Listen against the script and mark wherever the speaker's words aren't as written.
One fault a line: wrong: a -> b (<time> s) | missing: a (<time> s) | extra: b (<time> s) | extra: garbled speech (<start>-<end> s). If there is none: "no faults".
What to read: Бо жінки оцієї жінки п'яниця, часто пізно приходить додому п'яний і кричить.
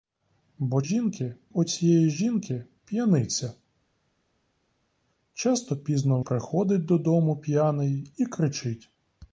no faults